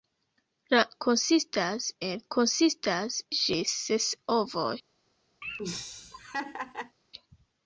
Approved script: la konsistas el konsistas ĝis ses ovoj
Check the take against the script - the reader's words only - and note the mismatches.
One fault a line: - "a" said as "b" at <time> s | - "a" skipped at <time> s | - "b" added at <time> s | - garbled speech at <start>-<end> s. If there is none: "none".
none